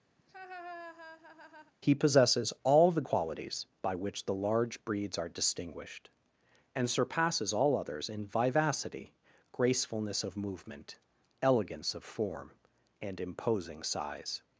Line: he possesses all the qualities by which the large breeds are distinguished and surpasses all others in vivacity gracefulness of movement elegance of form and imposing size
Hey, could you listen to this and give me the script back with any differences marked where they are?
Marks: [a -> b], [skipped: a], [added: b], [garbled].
he possesses all the qualities by which the large breeds are distinguished and surpasses all others in vivacity gracefulness of movement elegance of form and imposing size